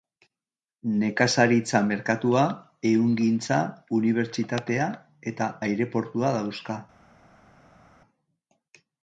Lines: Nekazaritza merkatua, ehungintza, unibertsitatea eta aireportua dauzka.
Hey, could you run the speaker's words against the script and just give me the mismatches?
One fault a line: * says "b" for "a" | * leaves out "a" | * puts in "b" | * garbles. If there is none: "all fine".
all fine